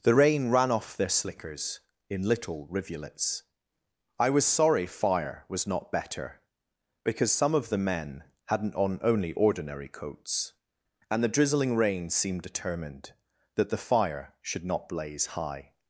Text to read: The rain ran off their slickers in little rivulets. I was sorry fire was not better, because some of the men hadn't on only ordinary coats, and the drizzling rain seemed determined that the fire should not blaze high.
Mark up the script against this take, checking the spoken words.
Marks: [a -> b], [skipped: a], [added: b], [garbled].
The rain ran off their slickers in little rivulets. I was sorry fire was not better, because some of the men hadn't on only ordinary coats, and the drizzling rain seemed determined that the fire should not blaze high.